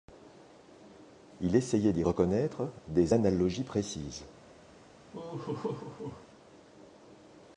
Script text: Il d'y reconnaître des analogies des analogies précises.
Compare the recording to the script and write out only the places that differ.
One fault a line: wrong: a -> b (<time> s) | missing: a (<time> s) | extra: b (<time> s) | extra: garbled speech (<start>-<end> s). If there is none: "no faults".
extra: essayait (1.6 s)
missing: des analogies (3.6 s)